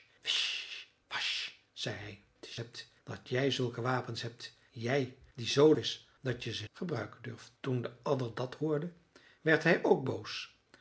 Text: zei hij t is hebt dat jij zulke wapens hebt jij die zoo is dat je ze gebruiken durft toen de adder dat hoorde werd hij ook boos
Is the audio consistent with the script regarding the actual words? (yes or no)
yes